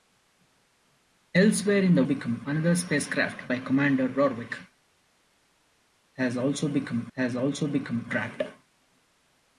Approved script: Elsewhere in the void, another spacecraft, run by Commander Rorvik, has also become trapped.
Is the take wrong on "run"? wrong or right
wrong